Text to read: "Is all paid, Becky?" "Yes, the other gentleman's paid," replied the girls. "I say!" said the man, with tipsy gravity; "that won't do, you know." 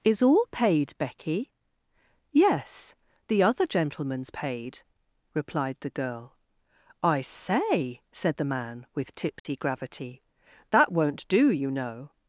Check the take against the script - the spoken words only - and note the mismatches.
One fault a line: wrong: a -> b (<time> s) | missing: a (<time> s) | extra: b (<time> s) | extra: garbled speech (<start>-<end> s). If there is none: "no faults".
wrong: girls -> girl (5.9 s)